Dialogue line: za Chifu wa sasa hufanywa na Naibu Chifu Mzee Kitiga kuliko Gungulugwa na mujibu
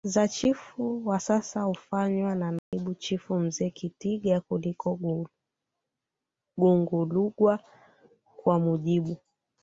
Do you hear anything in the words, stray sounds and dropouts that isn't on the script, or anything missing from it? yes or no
yes